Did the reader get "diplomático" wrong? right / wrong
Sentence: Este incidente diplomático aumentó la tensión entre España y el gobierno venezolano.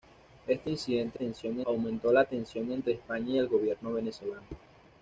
wrong